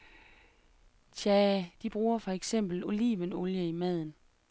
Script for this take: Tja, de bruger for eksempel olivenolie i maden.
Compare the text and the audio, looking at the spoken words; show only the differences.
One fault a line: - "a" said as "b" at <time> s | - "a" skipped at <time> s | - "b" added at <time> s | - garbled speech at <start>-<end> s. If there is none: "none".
none